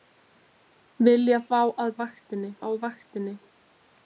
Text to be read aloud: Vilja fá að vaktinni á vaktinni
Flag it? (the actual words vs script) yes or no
no